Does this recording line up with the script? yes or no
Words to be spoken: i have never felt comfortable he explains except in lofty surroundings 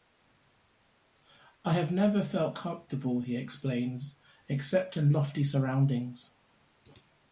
yes